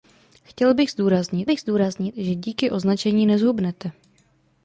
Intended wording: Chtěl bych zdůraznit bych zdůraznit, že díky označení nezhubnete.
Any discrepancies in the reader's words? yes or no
no